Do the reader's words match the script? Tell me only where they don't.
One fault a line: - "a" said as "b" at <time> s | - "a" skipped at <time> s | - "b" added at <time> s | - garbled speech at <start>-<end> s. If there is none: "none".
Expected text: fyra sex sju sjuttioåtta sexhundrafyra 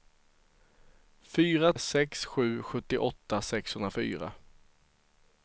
none